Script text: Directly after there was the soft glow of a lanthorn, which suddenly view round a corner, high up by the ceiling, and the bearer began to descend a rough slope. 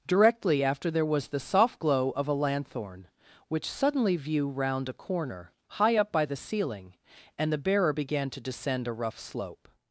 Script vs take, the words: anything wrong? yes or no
no